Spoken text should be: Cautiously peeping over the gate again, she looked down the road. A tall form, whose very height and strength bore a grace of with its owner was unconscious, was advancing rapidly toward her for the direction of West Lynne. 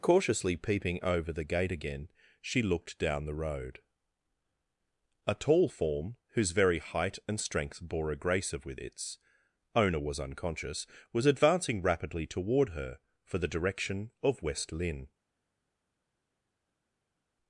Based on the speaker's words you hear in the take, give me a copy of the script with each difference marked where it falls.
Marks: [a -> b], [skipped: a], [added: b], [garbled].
Cautiously peeping over the gate again, she looked down the road. A tall form, whose very height and strength bore a grace of with its owner was unconscious, was advancing rapidly toward her for the direction of West Lynne.